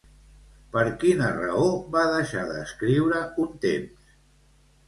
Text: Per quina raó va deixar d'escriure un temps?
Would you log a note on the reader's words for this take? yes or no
no